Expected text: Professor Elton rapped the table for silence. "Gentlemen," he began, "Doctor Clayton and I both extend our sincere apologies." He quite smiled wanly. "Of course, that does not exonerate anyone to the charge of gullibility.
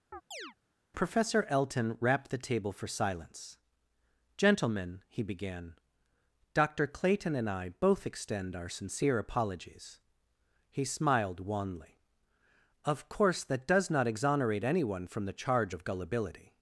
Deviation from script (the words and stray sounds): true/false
true